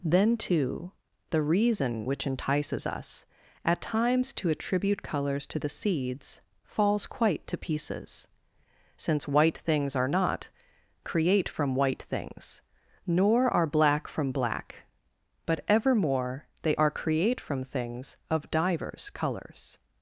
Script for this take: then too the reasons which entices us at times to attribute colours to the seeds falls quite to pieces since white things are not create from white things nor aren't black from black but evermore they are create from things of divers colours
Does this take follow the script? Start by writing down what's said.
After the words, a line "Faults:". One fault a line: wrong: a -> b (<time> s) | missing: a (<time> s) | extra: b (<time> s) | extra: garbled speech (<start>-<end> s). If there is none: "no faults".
then too the reason which entices us at times to attribute colours to the seeds falls quite to pieces since white things are not create from white things nor are black from black but evermore they are create from things of divers colours
Faults:
wrong: reasons -> reason (1.4 s)
wrong: aren't -> are (13.5 s)